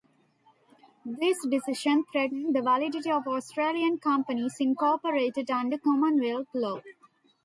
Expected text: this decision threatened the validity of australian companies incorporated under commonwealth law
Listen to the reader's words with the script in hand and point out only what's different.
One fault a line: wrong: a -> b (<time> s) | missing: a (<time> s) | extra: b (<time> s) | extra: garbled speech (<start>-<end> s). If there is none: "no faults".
no faults